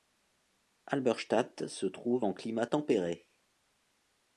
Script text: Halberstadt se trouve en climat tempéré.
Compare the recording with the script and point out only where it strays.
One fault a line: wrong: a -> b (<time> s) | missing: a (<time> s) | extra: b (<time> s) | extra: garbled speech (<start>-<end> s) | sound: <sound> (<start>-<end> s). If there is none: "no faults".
no faults